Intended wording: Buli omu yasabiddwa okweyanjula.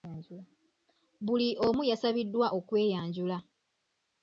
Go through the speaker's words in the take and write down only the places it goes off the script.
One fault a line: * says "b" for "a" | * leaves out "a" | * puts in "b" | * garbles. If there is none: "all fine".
all fine